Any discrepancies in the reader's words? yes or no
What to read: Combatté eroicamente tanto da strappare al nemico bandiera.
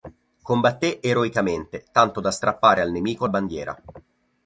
no